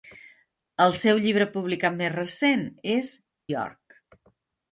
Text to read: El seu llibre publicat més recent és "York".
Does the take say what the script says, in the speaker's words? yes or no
yes